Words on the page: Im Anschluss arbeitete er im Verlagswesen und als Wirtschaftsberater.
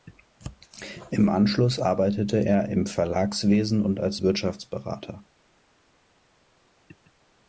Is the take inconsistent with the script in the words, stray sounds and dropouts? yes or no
no